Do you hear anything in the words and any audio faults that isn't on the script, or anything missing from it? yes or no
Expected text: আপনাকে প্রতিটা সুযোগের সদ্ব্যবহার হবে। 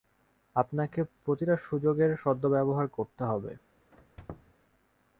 yes